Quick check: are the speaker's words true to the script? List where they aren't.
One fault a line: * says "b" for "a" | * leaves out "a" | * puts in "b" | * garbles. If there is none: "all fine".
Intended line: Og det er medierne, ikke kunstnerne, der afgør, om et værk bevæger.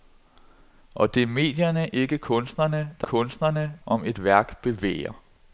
* says "kunstnerne" for "afgør"